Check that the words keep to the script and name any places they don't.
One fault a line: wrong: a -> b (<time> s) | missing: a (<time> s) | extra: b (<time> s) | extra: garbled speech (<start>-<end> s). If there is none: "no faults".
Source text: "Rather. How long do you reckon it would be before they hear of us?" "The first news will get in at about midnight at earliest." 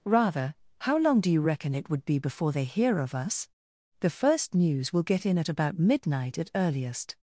no faults